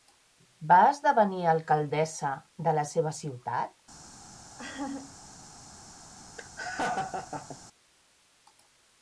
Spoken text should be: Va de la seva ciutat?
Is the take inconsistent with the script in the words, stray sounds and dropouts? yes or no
yes